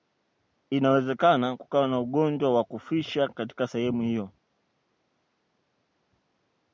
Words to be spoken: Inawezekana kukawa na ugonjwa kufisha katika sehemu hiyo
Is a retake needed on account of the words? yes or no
yes